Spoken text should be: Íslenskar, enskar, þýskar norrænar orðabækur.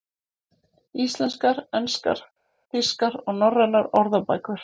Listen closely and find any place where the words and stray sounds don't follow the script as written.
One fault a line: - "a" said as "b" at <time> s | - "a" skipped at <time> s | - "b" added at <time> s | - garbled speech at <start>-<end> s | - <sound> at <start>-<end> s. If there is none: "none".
- "og" added at 3.2 s